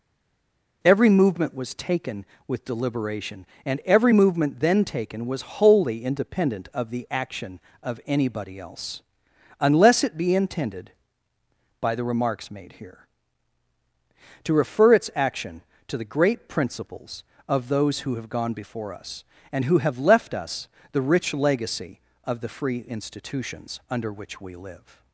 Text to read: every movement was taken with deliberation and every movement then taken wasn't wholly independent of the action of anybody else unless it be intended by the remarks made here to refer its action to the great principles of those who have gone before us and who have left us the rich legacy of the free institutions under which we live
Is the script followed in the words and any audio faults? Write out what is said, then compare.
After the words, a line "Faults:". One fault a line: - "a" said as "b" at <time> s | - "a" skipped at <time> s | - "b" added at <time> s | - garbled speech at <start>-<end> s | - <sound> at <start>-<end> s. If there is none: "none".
every movement was taken with deliberation and every movement then taken was wholly independent of the action of anybody else unless it be intended by the remarks made here to refer its action to the great principles of those who have gone before us and who have left us the rich legacy of the free institutions under which we live
Faults:
- "wasn't" said as "was" at 5.3 s